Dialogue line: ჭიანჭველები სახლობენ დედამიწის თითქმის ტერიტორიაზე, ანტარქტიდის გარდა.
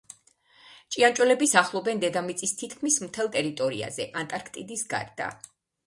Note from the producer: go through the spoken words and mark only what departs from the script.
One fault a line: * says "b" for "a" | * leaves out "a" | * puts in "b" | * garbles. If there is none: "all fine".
* puts in "მთელ"